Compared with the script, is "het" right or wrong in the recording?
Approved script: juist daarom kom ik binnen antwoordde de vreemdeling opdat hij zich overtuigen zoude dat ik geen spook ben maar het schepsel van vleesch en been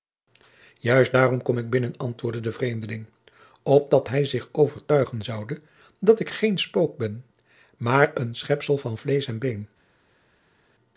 wrong